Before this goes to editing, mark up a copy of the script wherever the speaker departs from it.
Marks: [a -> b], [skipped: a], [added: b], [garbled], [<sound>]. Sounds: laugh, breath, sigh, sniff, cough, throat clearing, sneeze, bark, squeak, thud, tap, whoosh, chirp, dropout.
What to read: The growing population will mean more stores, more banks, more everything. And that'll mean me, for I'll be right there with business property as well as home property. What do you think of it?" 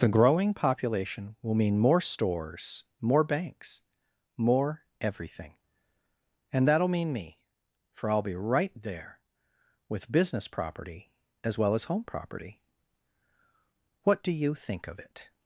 The growing population will mean more stores, more banks, more everything. And that'll mean me, for I'll be right there with business property as well as home property. What do you think of it?"